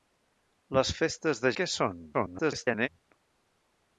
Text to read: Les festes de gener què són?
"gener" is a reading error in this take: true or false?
true